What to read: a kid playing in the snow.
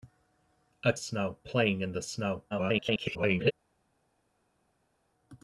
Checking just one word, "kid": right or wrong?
wrong